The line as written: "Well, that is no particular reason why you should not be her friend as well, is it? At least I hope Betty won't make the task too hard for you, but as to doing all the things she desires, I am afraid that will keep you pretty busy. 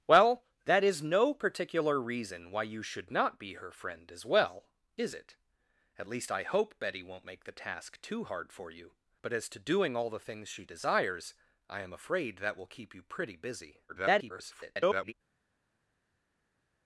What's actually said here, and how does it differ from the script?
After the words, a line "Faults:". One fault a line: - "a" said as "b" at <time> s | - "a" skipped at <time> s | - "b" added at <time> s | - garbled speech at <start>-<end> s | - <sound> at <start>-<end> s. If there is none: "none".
"Well, that is no particular reason why you should not be her friend as well, is it? At least I hope Betty won't make the task too hard for you, but as to doing all the things she desires, I am afraid that will keep you pretty busy. [garbled]
Faults:
- garbled speech at 13.9-15.1 s